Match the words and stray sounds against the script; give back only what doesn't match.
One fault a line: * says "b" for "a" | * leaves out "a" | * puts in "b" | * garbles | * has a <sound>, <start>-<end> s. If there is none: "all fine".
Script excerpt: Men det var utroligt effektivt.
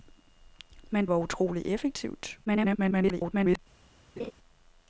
* leaves out "det"
* garbles
* has a laugh, 4.2-4.3 s